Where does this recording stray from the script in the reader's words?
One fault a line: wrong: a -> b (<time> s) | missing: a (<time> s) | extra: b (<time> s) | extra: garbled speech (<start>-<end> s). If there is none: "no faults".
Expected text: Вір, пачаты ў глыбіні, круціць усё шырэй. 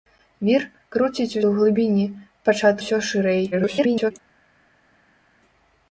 wrong: пачаты -> круціць (1.0 s)
wrong: круціць -> пачаты (2.5 s)
extra: garbled speech (3.5-4.1 s)